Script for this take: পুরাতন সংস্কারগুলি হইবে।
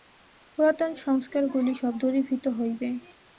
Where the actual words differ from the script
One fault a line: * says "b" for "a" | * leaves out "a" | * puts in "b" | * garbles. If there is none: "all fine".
* puts in "সব দূরীভূত"